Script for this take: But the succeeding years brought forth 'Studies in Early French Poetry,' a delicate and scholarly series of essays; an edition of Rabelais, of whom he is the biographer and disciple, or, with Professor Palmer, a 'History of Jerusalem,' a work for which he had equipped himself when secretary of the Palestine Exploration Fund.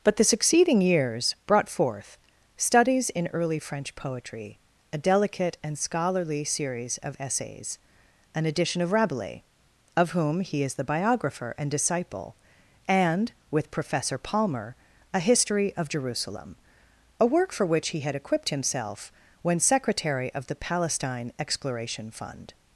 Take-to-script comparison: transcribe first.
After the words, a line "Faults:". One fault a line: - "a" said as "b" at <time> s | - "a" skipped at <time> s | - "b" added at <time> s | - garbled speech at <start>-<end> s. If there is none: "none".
But the succeeding years brought forth 'Studies in Early French Poetry,' a delicate and scholarly series of essays; an edition of Rabelais, of whom he is the biographer and disciple, and, with Professor Palmer, a 'History of Jerusalem,' a work for which he had equipped himself when secretary of the Palestine Exploration Fund.
Faults:
- "or" said as "and" at 12.9 s